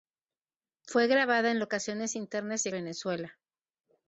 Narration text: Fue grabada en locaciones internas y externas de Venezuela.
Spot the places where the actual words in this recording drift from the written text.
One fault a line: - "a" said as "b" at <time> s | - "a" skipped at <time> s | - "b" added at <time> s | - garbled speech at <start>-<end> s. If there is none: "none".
- "externas de" skipped at 2.7 s